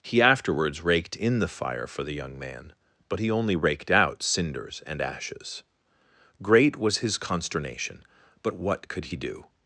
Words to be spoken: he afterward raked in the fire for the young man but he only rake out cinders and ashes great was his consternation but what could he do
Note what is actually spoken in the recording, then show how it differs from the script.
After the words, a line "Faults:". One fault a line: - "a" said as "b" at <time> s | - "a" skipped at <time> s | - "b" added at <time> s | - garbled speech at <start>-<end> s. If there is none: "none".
he afterwards raked in the fire for the young man but he only raked out cinders and ashes great was his consternation but what could he do
Faults:
- "afterward" said as "afterwards" at 0.2 s
- "rake" said as "raked" at 3.6 s